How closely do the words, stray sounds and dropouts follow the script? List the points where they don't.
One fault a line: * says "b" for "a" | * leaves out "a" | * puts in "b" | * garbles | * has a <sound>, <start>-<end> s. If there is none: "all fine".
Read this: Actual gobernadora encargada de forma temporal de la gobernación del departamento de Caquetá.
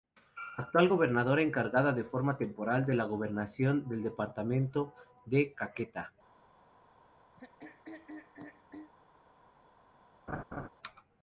* has a throat clearing, 7.4-8.9 s
* has a laugh, 10.3-10.7 s